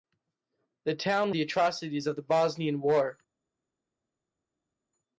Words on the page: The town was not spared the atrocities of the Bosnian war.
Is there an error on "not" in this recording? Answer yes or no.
yes